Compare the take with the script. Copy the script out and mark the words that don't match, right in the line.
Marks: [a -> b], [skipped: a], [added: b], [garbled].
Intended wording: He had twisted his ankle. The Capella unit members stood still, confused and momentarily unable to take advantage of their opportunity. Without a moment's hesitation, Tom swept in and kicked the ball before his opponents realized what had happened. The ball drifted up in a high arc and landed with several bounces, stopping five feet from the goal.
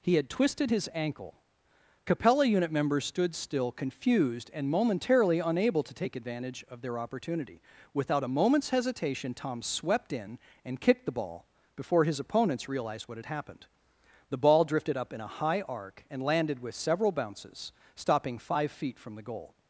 He had twisted his ankle. [skipped: The] Capella unit members stood still, confused and momentarily unable to take advantage of their opportunity. Without a moment's hesitation, Tom swept in and kicked the ball before his opponents realized what had happened. The ball drifted up in a high arc and landed with several bounces, stopping five feet from the goal.